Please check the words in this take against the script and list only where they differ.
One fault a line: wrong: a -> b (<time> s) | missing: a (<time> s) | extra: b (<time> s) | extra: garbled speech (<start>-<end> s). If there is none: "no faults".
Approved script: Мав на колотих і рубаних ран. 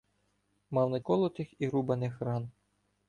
no faults